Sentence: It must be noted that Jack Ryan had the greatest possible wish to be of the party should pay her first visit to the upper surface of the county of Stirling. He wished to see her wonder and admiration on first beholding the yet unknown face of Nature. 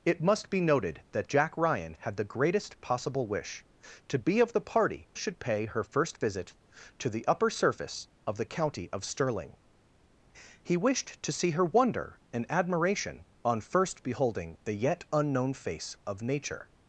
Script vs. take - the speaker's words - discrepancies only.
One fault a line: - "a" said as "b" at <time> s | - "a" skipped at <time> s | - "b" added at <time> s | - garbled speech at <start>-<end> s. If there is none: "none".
none